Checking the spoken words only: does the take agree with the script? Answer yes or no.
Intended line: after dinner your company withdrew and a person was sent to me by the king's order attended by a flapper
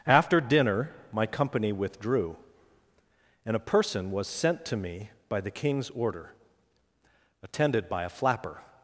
no